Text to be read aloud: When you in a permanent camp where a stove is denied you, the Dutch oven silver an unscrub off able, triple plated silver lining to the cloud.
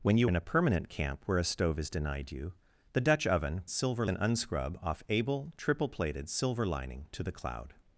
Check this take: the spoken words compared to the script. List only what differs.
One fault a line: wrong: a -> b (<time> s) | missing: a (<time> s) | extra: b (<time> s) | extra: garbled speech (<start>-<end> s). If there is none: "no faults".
no faults